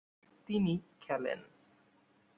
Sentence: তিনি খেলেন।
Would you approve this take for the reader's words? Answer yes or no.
yes